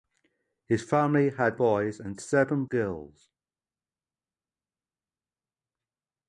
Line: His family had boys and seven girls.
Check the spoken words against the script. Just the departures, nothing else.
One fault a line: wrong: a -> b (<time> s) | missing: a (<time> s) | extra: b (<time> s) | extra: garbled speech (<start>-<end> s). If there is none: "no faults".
no faults